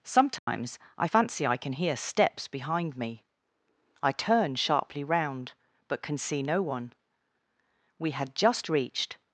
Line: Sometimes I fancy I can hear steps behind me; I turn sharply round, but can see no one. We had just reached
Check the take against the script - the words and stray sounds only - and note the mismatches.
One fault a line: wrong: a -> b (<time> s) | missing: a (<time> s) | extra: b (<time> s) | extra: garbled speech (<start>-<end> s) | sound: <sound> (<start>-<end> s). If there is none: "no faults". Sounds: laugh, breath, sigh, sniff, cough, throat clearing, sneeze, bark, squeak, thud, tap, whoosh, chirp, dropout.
sound: dropout (0.4-0.5 s)